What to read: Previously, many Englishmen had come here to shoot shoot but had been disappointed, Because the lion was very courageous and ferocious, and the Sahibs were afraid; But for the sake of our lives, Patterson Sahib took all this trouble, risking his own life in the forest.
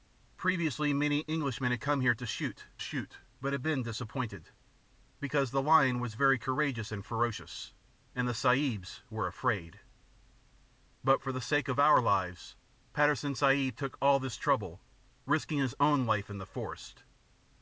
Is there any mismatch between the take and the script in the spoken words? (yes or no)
no